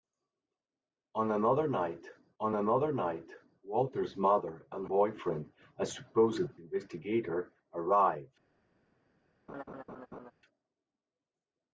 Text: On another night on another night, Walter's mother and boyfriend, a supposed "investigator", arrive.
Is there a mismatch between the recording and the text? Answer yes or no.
no